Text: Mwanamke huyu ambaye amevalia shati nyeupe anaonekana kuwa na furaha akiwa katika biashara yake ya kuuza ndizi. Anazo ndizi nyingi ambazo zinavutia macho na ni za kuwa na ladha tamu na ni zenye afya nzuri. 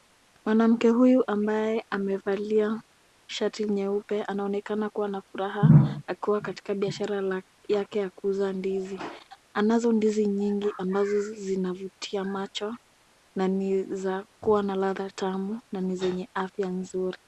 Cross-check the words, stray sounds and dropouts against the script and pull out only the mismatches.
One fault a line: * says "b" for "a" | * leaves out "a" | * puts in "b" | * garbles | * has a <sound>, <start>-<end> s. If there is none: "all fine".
all fine